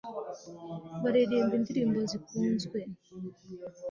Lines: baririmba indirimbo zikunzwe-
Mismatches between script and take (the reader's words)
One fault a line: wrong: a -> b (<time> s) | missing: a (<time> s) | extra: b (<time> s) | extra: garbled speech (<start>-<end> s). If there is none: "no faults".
no faults